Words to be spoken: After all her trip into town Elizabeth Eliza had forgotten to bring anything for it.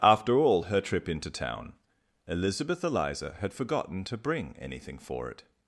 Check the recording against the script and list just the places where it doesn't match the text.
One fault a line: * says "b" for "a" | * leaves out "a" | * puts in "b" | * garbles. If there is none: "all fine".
all fine